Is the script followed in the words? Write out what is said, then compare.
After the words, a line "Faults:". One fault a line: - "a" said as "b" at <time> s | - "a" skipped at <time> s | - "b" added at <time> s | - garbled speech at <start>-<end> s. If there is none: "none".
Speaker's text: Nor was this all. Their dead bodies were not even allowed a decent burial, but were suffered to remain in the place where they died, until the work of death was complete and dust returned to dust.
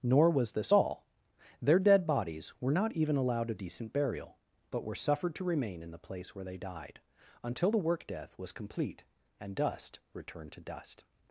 Nor was this all. Their dead bodies were not even allowed a decent burial, but were suffered to remain in the place where they died, until the work death was complete and dust returned to dust.
Faults:
- "of" skipped at 8.1 s